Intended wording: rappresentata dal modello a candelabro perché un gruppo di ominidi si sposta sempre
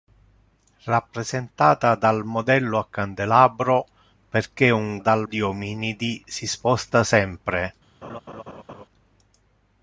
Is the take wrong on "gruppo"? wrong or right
wrong